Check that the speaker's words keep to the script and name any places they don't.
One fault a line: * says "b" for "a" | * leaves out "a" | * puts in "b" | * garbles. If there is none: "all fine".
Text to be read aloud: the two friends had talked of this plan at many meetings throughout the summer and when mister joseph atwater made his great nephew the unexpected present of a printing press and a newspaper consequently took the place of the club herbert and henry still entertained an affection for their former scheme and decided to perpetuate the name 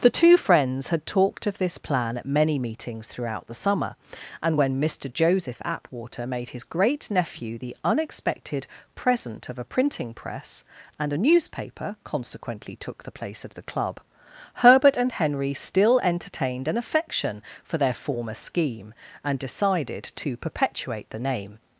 all fine